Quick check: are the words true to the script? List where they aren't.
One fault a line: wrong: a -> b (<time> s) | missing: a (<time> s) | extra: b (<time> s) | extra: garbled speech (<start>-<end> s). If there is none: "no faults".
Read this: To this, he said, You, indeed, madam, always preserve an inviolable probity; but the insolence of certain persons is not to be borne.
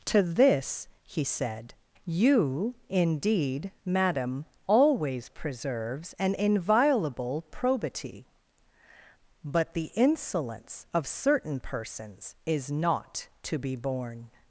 wrong: preserve -> preserves (5.3 s)